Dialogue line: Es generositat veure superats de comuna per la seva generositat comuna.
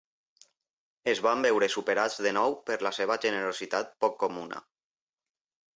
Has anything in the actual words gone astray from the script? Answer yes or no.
yes